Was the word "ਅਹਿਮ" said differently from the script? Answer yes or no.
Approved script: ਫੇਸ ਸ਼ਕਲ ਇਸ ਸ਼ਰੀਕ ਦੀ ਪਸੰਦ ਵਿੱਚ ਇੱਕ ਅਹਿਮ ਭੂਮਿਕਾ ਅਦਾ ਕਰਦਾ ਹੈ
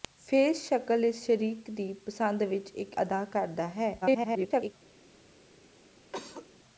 yes